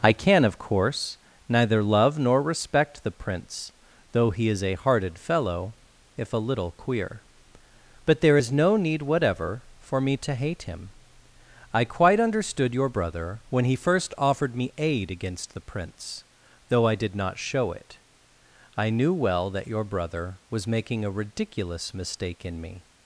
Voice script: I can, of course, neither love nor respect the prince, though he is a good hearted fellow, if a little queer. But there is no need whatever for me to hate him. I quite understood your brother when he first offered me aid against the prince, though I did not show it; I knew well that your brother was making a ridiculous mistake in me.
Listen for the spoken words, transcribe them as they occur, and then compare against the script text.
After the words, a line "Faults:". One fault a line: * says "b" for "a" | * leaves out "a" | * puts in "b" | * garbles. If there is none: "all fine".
I can, of course, neither love nor respect the prince, though he is a hearted fellow, if a little queer. But there is no need whatever for me to hate him. I quite understood your brother when he first offered me aid against the prince, though I did not show it; I knew well that your brother was making a ridiculous mistake in me.
Faults:
* leaves out "good"